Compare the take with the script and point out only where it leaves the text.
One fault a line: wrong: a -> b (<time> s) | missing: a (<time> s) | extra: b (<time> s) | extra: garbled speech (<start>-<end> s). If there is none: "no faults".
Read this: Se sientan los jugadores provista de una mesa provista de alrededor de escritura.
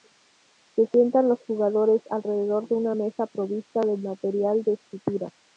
wrong: provista -> alrededor (2.1 s)
wrong: alrededor -> material (4.0 s)